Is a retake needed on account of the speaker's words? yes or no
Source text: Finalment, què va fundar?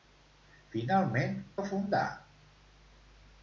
yes